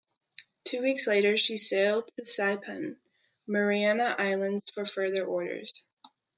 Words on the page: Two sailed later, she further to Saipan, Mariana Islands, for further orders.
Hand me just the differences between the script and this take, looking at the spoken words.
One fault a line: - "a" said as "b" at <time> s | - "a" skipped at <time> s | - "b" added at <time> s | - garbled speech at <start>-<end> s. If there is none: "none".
- "sailed" said as "weeks" at 0.8 s
- "further" said as "sailed" at 1.6 s